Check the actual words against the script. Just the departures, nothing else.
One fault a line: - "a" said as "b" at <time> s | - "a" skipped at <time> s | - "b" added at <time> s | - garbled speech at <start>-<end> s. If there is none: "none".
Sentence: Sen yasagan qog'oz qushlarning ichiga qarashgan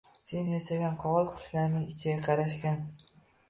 none